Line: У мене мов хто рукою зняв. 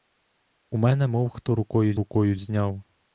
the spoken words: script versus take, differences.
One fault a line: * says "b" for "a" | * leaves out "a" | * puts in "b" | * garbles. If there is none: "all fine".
* puts in "рукою"